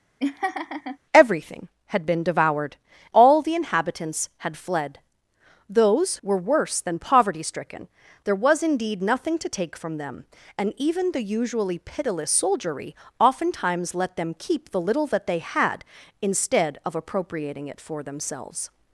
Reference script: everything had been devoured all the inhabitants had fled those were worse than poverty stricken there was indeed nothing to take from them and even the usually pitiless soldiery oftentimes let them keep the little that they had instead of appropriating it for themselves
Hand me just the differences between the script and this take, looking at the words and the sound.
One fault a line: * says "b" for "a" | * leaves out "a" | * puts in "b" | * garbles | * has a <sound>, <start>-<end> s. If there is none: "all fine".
* has a laugh, 0.2-1.0 s